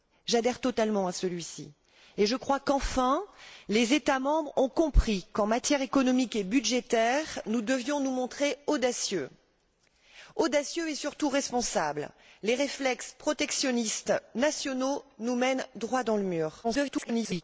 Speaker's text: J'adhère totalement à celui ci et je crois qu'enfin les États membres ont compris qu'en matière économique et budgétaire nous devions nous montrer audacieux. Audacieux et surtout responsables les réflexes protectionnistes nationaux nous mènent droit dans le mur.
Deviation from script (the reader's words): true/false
true